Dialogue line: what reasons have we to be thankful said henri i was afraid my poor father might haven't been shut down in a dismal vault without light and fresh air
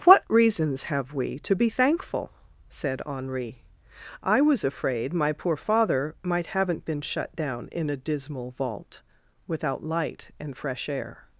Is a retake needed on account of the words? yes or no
no